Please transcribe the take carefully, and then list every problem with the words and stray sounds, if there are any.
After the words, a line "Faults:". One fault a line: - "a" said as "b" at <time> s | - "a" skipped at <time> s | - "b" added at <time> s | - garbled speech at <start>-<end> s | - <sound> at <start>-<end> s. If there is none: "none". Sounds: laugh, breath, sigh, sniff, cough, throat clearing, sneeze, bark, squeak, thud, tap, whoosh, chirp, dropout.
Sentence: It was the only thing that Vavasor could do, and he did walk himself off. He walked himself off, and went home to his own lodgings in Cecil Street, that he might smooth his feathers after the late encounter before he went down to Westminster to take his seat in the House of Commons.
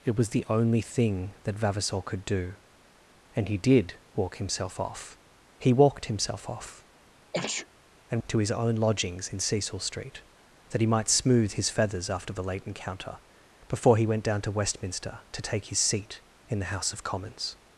It was the only thing that Vavasor could do, and he did walk himself off. He walked himself off, and to his own lodgings in Cecil Street, that he might smooth his feathers after the late encounter before he went down to Westminster to take his seat in the House of Commons.
Faults:
- sneeze at 7.3-7.7 s
- "went home" skipped at 8.2 s